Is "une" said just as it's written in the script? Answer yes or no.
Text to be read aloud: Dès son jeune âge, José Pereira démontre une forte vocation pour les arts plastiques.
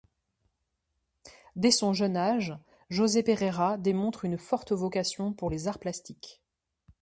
yes